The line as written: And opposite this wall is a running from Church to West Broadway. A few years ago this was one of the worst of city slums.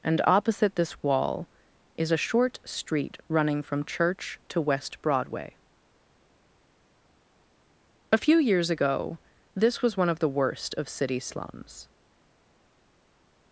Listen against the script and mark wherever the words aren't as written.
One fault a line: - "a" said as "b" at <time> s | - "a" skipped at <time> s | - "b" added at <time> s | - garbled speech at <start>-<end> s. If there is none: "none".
- "short street" added at 2.2 s